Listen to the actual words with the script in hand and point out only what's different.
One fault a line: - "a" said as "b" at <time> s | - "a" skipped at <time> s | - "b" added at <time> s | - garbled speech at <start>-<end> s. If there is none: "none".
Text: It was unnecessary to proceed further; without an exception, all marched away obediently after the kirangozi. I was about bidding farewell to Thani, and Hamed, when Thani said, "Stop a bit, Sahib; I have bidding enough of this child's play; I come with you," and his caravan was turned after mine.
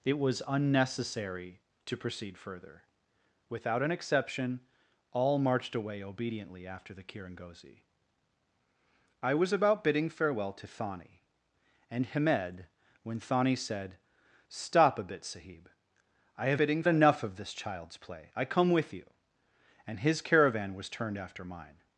none